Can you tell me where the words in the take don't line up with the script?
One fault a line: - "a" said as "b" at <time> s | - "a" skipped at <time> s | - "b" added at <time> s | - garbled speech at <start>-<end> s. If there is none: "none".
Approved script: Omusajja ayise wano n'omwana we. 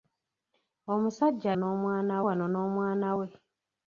- "ayise" said as "n'omwana" at 1.6 s